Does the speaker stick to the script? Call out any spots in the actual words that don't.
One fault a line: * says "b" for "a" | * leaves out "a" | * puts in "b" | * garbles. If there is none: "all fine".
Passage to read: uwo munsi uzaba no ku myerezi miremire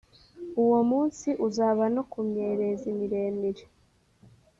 all fine